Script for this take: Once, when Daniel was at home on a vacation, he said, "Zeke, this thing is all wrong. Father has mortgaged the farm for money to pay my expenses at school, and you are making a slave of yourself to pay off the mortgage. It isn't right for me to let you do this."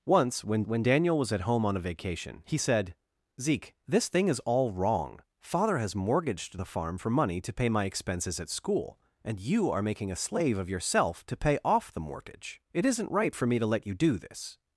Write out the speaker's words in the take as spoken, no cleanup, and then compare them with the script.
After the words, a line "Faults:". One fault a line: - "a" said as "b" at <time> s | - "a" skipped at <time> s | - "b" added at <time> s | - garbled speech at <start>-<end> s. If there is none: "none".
Once, when when Daniel was at home on a vacation, he said, "Zeke, this thing is all wrong. Father has mortgaged the farm for money to pay my expenses at school, and you are making a slave of yourself to pay off the mortgage. It isn't right for me to let you do this."
Faults:
- "when" added at 0.6 s